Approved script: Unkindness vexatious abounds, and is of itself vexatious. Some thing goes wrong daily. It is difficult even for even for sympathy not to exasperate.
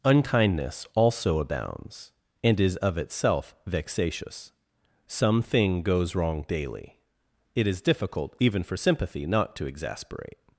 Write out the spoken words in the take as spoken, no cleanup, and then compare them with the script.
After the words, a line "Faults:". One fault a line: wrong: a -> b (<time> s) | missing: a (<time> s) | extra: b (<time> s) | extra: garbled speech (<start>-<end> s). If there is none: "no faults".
Unkindness also abounds, and is of itself vexatious. Some thing goes wrong daily. It is difficult even for sympathy not to exasperate.
Faults:
wrong: vexatious -> also (0.9 s)
missing: even for (8.8 s)